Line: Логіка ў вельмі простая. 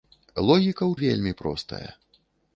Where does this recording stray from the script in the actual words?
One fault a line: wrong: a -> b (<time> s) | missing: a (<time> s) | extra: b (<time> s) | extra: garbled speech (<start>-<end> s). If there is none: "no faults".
no faults